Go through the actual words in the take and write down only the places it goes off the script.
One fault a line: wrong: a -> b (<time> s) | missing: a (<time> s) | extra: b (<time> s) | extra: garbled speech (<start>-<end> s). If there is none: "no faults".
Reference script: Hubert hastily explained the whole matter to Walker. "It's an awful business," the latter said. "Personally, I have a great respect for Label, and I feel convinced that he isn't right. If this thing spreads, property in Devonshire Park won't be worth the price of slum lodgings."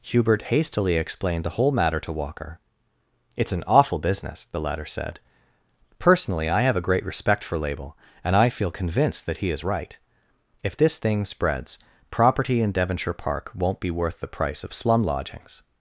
wrong: isn't -> is (9.5 s)